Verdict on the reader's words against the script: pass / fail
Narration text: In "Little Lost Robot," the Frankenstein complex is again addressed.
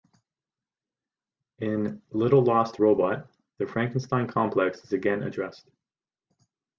pass